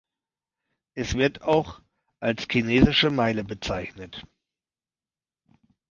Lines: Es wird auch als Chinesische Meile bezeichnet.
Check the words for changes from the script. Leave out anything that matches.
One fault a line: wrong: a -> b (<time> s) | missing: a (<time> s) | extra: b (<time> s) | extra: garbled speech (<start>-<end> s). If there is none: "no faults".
no faults